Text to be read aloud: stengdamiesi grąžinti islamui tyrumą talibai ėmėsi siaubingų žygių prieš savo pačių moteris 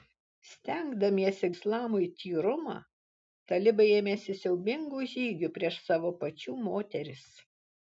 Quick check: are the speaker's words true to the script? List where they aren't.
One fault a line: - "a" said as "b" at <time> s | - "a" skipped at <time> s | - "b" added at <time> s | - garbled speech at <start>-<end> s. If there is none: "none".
- "grąžinti" skipped at 1.5 s